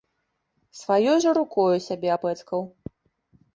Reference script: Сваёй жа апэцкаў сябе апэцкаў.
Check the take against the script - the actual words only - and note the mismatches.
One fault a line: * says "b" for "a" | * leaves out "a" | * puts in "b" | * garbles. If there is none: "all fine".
* says "рукою" for "апэцкаў"